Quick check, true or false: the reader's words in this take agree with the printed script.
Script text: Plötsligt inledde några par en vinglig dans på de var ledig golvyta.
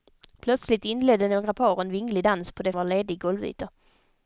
true